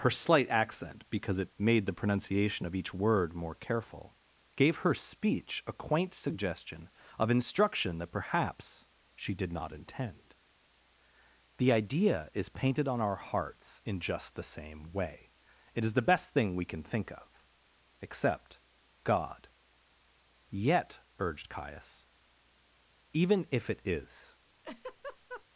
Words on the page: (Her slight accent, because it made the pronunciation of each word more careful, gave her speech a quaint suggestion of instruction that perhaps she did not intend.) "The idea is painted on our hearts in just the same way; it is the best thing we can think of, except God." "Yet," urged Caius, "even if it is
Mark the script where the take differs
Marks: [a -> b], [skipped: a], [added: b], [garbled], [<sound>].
(Her slight accent, because it made the pronunciation of each word more careful, gave her speech a quaint suggestion of instruction that perhaps she did not intend.) "The idea is painted on our hearts in just the same way; it is the best thing we can think of, except God." "Yet," urged Caius, "even if it is [laugh]